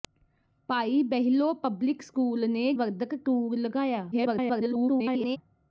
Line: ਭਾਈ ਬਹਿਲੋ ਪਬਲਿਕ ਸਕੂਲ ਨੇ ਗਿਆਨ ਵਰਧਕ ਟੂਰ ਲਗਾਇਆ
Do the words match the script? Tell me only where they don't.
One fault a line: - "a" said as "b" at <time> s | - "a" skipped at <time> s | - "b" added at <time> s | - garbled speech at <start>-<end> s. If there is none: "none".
- "ਗਿਆਨ" skipped at 2.7 s
- garbled speech at 4.1-5.4 s